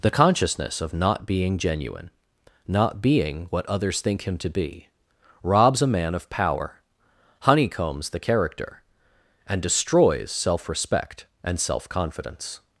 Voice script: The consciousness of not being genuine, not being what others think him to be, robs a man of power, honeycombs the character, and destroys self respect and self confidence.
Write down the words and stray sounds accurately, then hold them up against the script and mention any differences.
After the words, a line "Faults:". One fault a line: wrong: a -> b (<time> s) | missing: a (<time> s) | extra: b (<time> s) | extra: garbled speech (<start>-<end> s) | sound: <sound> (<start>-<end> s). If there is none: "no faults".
The consciousness of not being genuine, not being what others think him to be, robs a man of power, honeycombs the character, and destroys self respect and self confidence.
Faults:
no faults